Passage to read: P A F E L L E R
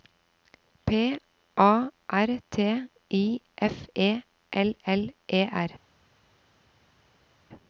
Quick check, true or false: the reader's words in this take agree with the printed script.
false